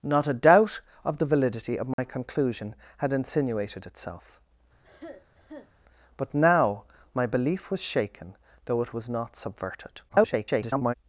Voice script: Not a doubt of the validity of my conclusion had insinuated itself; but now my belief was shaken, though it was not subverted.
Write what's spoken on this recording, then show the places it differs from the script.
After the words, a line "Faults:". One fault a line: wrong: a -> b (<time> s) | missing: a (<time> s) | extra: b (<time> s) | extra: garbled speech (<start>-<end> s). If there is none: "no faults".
Not a doubt of the validity of my conclusion had insinuated itself; but now my belief was shaken, though it was not subverted. [garbled]
Faults:
extra: garbled speech (10.1-10.9 s)